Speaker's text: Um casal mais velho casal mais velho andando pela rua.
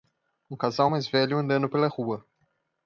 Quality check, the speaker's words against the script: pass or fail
fail